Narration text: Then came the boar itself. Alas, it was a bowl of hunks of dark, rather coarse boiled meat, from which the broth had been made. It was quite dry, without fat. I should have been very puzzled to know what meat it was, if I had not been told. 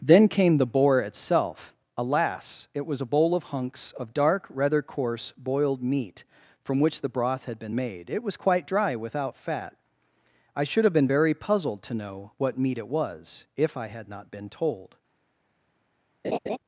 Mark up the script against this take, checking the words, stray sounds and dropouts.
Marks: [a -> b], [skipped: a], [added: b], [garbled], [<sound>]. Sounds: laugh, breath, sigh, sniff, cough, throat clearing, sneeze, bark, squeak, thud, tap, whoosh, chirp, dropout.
Then came the boar itself. Alas, it was a bowl of hunks of dark, rather coarse boiled meat, from which the broth had been made. It was quite dry, without fat. I should have been very puzzled to know what meat it was, if I had not been told. [laugh]